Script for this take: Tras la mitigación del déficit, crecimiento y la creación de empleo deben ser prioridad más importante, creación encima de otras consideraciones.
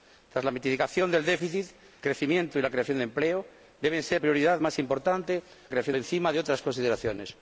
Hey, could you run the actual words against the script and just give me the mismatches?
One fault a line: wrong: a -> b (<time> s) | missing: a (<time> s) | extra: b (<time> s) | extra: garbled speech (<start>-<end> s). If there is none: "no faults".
no faults